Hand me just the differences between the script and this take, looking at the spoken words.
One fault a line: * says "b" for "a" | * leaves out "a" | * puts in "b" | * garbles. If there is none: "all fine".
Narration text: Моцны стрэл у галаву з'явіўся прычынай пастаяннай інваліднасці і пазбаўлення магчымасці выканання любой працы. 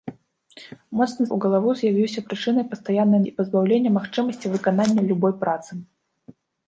* leaves out "стрэл"
* leaves out "інваліднасці"